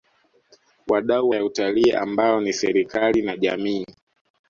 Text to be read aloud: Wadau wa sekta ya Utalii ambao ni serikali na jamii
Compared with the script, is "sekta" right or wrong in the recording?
wrong